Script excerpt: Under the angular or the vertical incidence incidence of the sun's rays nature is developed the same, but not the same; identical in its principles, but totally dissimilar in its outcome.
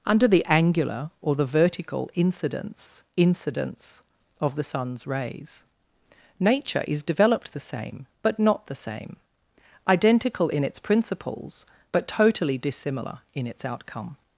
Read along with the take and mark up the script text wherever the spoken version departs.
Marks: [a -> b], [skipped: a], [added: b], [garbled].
Under the angular or the vertical incidence incidence of the sun's rays nature is developed the same, but not the same; identical in its principles, but totally dissimilar in its outcome.